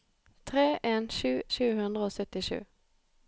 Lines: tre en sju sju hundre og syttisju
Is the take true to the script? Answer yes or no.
yes